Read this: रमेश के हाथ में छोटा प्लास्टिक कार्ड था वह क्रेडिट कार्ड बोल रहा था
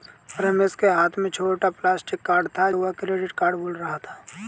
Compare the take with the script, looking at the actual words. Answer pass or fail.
pass